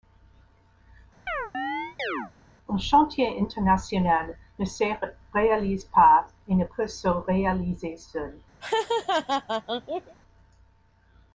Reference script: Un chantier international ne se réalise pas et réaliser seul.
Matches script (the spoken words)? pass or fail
fail